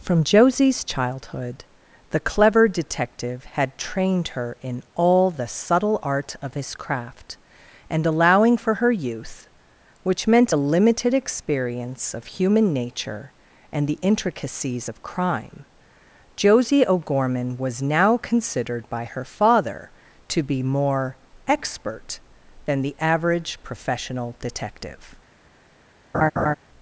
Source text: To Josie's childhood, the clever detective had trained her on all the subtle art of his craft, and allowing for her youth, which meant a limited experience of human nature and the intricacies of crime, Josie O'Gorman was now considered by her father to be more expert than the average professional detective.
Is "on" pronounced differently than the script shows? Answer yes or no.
yes